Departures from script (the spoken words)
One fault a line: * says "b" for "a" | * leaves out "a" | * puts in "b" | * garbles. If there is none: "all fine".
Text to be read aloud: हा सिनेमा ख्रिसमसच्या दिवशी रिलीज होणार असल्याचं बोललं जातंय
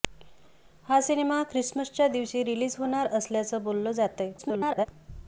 * garbles